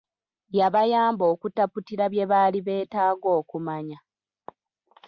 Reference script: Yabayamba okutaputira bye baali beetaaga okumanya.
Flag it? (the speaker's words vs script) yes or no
no